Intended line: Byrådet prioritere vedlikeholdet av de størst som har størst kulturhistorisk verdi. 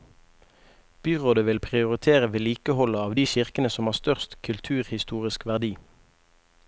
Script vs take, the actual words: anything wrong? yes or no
yes